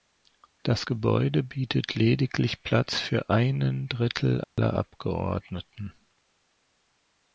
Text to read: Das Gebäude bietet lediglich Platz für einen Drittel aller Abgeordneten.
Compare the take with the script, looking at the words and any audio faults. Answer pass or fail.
fail